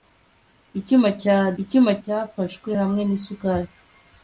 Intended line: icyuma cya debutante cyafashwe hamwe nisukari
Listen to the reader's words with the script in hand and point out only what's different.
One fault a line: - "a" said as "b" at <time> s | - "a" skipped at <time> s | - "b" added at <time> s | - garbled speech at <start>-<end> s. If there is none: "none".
- "debutante" said as "icyuma" at 1.6 s